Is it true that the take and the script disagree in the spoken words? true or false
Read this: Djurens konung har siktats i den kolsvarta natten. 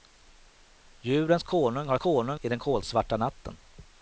true